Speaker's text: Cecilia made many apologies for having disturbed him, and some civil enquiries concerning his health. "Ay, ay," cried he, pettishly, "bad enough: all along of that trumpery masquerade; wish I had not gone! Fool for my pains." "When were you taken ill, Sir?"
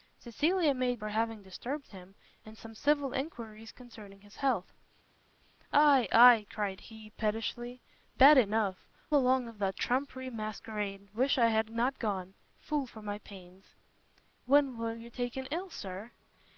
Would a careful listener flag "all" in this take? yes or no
yes